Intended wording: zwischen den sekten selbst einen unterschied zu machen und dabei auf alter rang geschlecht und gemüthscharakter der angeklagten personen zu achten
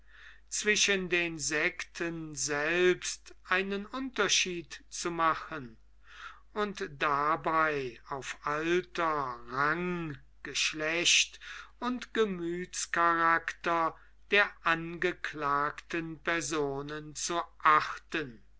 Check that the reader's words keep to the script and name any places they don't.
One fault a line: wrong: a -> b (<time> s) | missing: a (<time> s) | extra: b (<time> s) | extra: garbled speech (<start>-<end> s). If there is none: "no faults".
no faults